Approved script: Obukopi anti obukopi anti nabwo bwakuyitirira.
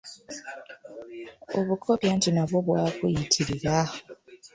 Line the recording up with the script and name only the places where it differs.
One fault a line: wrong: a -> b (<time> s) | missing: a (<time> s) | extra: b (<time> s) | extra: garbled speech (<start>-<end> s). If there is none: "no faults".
missing: obukopi anti (2.3 s)